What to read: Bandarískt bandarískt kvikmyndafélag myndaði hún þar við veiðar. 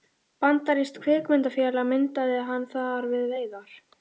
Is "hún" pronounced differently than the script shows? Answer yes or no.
yes